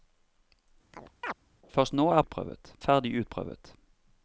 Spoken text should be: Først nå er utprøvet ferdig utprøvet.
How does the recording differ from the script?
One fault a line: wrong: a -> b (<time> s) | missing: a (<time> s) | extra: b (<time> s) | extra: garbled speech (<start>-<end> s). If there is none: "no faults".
no faults